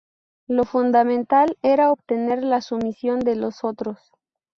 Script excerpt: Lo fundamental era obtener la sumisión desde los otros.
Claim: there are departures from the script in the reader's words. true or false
true